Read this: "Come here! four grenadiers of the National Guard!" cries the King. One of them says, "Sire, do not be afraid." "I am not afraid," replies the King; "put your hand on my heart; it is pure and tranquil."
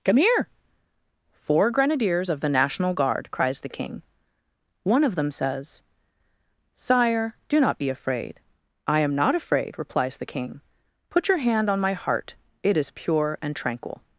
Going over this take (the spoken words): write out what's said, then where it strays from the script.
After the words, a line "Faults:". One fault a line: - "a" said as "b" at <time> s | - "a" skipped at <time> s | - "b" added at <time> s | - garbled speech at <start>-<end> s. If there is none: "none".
"Come here! four grenadiers of the National Guard!" cries the King. One of them says, "Sire, do not be afraid." "I am not afraid," replies the King; "put your hand on my heart; it is pure and tranquil."
Faults:
none